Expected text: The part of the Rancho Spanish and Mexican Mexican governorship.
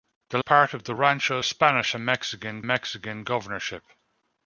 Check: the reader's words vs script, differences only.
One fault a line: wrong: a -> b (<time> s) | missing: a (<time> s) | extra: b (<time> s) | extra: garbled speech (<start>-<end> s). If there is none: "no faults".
no faults